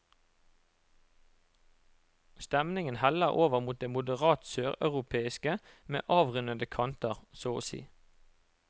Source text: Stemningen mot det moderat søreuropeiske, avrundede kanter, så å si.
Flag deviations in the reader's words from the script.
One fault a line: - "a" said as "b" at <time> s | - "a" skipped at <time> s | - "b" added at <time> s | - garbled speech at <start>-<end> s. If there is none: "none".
- "heller over" added at 3.0 s
- "med" added at 5.9 s